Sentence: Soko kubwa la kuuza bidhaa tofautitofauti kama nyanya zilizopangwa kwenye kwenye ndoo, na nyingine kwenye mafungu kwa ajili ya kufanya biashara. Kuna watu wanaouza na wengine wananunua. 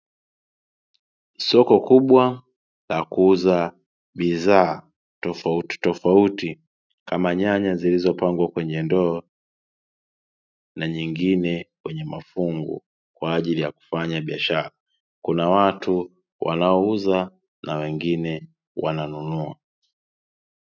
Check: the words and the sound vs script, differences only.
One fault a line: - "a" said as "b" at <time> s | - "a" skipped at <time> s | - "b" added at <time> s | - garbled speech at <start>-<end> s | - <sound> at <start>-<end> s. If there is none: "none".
- "kwenye" skipped at 8.8 s